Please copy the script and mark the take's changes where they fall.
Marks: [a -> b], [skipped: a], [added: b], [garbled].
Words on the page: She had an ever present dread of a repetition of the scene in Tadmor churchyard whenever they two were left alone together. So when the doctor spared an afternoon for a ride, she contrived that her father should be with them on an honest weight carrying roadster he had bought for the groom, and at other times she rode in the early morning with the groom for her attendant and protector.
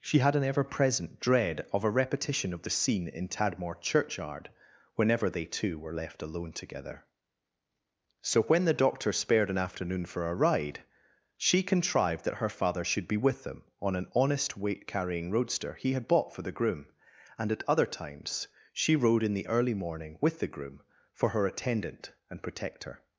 She had an ever present dread of a repetition of the scene in Tadmor churchyard whenever they two were left alone together. So when the doctor spared an afternoon for a ride, she contrived that her father should be with them on an honest weight carrying roadster he had bought for the groom, and at other times she rode in the early morning with the groom for her attendant and protector.